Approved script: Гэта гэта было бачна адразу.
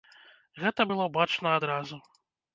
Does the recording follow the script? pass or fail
fail